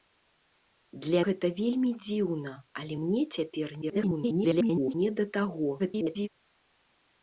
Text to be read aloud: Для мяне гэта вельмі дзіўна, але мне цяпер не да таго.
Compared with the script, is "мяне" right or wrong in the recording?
wrong